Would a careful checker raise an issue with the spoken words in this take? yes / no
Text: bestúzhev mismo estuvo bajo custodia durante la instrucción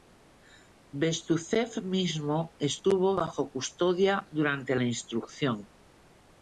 no